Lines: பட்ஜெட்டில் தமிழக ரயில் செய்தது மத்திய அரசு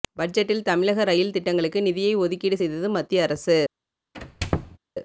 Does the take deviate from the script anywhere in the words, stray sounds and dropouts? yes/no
yes